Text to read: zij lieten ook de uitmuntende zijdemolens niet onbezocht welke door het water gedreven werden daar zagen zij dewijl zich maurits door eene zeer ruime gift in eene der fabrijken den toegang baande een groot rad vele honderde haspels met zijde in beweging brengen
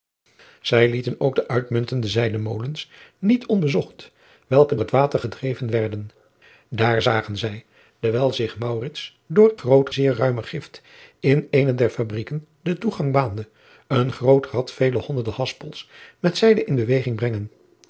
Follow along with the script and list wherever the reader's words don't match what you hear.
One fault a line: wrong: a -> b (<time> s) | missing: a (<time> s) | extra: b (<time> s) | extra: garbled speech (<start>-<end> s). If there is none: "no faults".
missing: door (4.8 s)
wrong: eene -> groot (9.5 s)